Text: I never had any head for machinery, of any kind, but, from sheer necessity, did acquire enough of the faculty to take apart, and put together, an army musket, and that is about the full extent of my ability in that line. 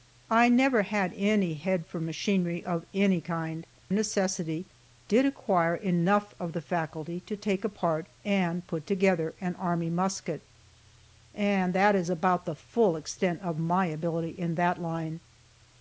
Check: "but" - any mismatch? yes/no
yes